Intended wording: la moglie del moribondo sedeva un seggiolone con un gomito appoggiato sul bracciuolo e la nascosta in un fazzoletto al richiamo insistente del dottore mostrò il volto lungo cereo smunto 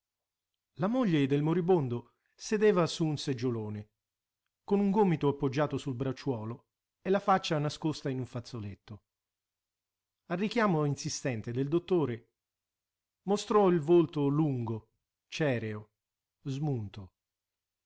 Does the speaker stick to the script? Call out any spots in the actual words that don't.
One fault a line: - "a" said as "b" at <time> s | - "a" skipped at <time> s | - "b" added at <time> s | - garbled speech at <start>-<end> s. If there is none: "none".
- "su" added at 2.9 s
- "faccia" added at 7.2 s